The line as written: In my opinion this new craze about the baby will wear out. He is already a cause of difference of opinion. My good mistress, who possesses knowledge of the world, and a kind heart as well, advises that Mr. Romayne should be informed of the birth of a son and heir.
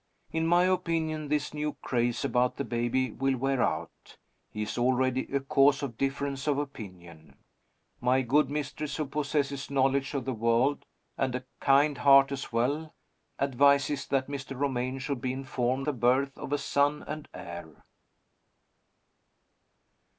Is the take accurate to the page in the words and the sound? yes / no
no